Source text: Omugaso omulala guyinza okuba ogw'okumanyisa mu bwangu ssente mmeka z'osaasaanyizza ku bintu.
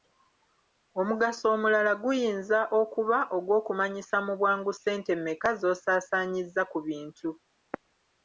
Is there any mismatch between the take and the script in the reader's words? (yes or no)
no